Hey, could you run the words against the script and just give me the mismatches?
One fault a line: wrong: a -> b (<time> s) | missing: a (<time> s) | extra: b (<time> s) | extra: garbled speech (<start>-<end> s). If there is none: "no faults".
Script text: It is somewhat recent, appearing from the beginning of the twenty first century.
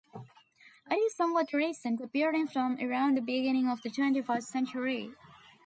extra: around (2.8 s)